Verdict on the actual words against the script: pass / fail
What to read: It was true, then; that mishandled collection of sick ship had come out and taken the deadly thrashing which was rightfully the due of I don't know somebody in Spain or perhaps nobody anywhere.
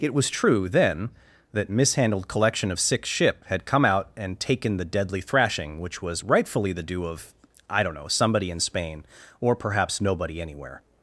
pass